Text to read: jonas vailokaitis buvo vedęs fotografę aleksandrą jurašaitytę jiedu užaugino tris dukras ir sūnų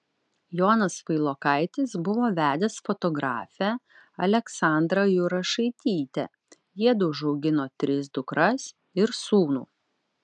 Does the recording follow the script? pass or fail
pass